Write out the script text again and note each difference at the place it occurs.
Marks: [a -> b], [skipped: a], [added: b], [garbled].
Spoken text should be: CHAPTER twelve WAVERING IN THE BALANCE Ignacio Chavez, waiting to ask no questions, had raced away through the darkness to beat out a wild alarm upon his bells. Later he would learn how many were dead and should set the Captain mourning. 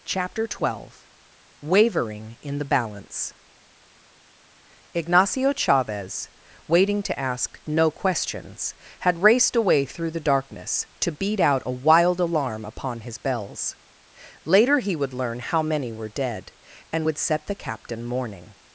CHAPTER twelve WAVERING IN THE BALANCE Ignacio Chavez, waiting to ask no questions, had raced away through the darkness to beat out a wild alarm upon his bells. Later he would learn how many were dead and [should -> would] set the Captain mourning.